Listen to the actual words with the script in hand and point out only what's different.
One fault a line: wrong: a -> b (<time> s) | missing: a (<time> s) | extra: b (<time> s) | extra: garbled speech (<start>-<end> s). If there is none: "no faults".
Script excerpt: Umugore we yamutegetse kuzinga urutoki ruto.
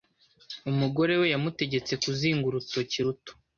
no faults